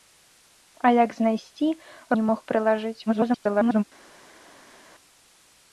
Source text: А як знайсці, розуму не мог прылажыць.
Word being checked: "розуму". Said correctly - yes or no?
no